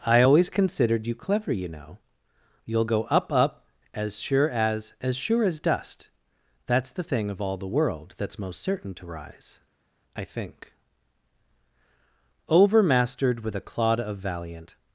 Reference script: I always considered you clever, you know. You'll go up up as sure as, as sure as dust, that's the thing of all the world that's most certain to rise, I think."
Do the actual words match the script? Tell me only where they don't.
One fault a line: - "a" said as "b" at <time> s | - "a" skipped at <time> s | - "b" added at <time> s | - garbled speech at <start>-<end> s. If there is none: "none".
- "Overmastered with a clod of valiant" added at 12.5 s